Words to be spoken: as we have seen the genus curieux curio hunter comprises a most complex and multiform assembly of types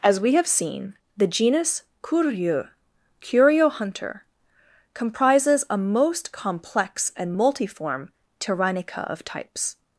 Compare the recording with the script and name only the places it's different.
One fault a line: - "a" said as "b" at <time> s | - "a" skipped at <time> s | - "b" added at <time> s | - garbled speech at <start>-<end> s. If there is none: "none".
- "assembly" said as "tyrannica" at 8.4 s